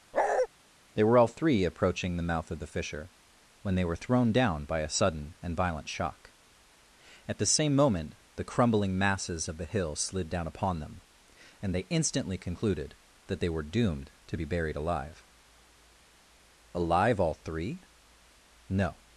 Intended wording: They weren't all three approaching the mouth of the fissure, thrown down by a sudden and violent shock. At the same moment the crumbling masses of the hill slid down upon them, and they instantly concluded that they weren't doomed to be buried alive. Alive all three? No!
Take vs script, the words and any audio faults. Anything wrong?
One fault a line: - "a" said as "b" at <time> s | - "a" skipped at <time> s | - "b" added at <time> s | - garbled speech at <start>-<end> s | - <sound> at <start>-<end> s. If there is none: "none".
- bark at 0.1-0.5 s
- "weren't" said as "were" at 1.0 s
- "when they were" added at 3.6 s
- "weren't" said as "were" at 13.5 s